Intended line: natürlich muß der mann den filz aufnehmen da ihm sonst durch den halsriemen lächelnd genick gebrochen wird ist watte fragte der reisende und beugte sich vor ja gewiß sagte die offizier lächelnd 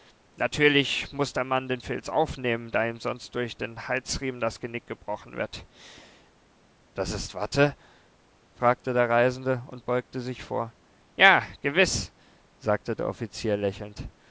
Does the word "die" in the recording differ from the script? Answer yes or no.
yes